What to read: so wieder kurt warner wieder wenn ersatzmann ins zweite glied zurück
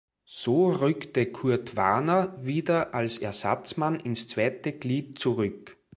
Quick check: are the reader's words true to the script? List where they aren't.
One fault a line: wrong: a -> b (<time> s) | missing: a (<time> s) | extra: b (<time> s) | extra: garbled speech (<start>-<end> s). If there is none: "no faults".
wrong: wieder -> rückte (0.7 s)
wrong: wenn -> als (2.9 s)